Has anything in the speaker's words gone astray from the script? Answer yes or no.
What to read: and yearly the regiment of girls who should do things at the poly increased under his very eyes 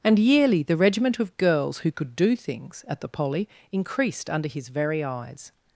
yes